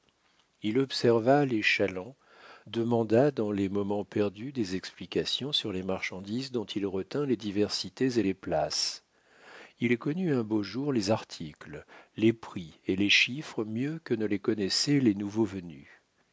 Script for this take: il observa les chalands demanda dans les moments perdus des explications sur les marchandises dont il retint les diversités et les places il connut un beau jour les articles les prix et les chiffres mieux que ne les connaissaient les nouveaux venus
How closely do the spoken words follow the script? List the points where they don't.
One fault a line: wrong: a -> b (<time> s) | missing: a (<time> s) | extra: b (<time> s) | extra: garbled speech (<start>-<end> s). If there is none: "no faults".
no faults